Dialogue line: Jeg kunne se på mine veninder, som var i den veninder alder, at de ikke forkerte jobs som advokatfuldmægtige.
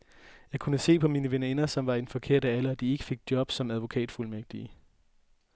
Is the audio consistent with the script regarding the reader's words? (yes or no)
no